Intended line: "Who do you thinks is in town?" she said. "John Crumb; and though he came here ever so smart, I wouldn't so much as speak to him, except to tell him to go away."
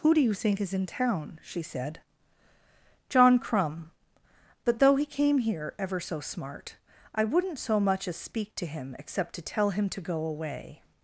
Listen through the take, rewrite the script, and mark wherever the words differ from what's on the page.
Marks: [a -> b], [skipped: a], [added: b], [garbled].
"Who do you [thinks -> think] is in town?" she said. "John Crumb; [and -> but] though he came here ever so smart, I wouldn't so much as speak to him, except to tell him to go away."